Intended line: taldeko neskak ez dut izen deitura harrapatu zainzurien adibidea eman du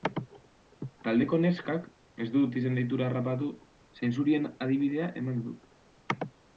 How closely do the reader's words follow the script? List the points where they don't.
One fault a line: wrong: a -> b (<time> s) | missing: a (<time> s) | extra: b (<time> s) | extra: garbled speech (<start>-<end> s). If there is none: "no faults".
no faults